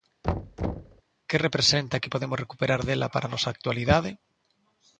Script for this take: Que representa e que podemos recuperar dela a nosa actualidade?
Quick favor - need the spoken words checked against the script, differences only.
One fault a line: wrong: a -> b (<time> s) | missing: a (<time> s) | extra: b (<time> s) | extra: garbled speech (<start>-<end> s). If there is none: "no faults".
extra: para (3.1 s)